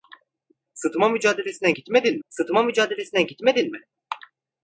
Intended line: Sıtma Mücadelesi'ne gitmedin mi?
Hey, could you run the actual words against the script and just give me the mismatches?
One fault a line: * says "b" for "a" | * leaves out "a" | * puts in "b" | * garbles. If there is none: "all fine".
* puts in "sıtma Mücadelesi'ne gitmedin"